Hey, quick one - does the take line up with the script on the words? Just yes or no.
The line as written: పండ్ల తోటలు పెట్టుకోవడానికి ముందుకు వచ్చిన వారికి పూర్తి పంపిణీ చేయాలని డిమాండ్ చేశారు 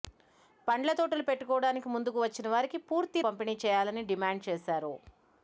yes